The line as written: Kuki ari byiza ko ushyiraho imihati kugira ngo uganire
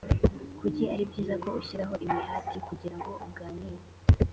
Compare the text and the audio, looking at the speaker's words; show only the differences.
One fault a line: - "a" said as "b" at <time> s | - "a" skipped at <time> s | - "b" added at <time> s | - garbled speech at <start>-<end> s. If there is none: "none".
none